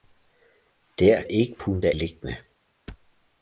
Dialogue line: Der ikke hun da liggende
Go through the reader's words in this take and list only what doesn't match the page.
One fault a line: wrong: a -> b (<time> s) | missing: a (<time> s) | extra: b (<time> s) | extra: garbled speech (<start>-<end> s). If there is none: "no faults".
no faults